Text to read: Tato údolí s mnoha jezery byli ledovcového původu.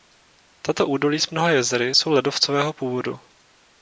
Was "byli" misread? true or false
true